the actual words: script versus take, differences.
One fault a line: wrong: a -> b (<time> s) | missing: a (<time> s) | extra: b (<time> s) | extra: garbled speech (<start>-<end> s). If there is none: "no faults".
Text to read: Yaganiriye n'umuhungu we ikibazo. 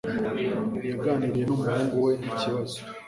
no faults